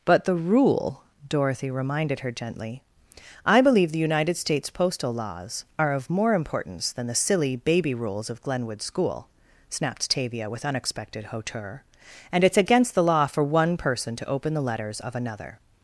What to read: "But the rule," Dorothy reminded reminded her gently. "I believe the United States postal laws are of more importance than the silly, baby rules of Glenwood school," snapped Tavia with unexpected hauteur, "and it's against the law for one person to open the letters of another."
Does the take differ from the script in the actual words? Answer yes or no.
yes